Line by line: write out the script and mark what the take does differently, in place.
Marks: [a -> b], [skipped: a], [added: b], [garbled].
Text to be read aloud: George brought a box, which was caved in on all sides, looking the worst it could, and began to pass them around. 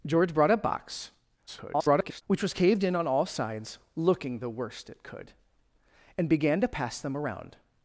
George brought a box, [garbled] which was caved in on all sides, looking the worst it could, and began to pass them around.